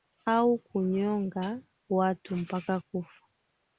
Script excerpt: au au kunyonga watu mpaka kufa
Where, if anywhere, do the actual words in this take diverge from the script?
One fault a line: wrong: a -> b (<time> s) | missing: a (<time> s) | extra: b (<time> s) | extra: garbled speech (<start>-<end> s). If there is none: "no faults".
missing: au (0.6 s)